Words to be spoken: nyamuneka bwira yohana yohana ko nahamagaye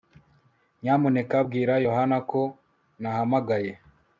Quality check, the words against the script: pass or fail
fail